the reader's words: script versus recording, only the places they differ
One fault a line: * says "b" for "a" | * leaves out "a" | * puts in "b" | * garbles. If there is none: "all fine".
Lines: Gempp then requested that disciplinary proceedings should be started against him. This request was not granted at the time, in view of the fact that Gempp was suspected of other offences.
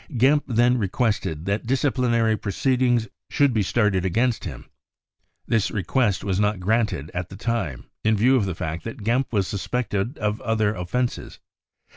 all fine